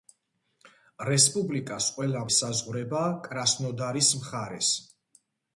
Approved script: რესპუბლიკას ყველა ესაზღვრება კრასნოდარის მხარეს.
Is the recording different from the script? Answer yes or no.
no